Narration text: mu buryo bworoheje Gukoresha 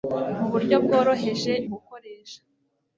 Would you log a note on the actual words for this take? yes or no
no